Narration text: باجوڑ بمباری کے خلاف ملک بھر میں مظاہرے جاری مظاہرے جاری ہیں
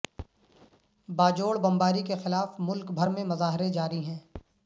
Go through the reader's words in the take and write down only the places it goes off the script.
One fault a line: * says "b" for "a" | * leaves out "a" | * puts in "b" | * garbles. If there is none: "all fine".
* leaves out "مظاہرے جاری"